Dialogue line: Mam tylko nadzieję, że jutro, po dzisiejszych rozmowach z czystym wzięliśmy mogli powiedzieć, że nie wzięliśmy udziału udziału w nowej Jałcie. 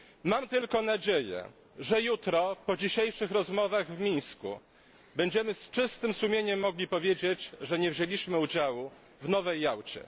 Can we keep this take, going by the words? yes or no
no